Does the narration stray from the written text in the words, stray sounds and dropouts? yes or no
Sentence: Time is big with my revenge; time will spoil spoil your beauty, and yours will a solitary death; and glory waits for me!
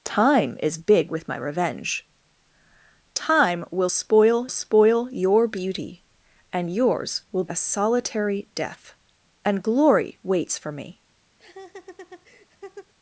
yes